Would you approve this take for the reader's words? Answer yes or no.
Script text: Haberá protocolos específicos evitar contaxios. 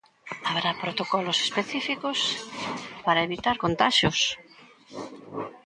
no